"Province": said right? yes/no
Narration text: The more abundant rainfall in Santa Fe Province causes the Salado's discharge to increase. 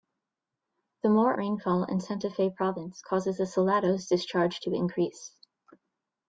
yes